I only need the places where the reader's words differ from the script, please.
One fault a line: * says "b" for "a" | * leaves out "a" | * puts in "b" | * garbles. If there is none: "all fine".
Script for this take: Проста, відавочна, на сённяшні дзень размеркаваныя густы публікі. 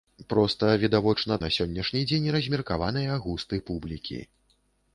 all fine